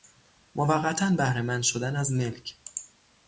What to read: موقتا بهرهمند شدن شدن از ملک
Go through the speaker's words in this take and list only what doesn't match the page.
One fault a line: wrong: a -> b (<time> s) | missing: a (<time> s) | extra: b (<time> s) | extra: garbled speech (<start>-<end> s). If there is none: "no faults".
missing: شدن (1.9 s)